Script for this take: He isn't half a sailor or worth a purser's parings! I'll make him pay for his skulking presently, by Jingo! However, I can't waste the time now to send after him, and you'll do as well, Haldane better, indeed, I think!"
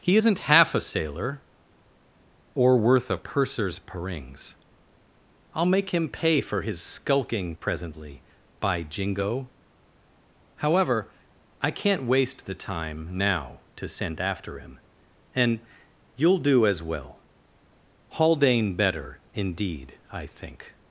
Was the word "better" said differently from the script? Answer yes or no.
no